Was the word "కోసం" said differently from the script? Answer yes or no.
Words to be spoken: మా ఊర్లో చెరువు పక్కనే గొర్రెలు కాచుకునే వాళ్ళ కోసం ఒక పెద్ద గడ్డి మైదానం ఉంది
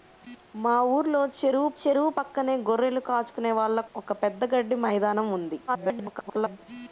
yes